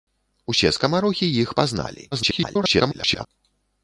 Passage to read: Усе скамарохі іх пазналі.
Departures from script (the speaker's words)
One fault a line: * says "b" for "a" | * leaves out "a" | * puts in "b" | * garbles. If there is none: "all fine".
* garbles